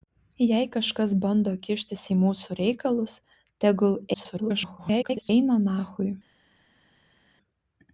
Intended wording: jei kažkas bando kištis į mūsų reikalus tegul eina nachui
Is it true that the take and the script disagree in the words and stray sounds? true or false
true